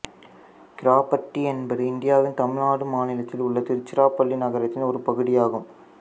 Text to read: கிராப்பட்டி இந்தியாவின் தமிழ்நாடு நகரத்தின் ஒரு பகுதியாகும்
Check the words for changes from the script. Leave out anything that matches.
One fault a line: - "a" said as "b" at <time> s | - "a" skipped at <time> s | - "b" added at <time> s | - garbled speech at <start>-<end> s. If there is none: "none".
- "என்பது" added at 1.5 s
- "மாநிலத்தில் உள்ள திருச்சிராப்பள்ளி" added at 2.9 s